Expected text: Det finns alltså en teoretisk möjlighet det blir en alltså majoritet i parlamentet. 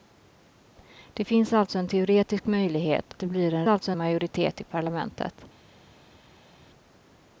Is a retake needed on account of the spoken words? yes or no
no